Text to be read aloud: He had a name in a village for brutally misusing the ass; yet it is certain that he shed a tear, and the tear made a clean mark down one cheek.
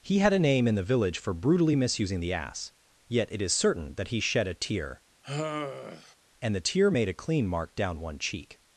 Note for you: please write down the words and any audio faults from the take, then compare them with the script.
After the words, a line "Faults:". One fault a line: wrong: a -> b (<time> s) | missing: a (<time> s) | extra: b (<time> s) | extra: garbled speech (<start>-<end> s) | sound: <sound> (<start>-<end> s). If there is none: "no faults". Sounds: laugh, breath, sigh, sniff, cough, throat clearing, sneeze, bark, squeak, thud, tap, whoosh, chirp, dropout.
He had a name in the village for brutally misusing the ass; yet it is certain that he shed a tear, and the tear made a clean mark down one cheek.
Faults:
wrong: a -> the (0.7 s)
sound: sigh (5.2-6.2 s)